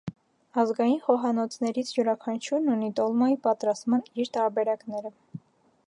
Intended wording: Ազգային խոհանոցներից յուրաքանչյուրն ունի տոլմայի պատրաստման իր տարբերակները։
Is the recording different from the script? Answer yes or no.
no